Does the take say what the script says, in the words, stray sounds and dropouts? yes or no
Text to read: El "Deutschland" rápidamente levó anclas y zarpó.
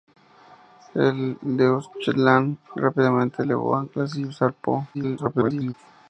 no